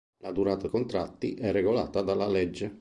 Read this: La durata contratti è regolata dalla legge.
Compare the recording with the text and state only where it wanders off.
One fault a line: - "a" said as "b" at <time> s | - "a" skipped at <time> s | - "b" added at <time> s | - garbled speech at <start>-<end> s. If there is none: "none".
none